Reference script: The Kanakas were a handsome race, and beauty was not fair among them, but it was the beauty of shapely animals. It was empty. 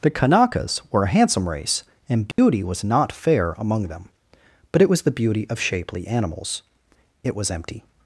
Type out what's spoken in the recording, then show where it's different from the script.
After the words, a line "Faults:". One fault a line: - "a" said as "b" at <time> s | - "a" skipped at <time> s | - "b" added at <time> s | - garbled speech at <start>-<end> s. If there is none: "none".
The Kanakas were a handsome race, and beauty was not fair among them, but it was the beauty of shapely animals. It was empty.
Faults:
none